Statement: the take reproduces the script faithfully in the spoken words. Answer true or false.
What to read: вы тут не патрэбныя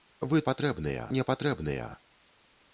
false